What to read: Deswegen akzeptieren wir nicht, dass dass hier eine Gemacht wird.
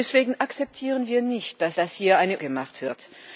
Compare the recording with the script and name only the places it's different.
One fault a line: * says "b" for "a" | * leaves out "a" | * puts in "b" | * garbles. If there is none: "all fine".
all fine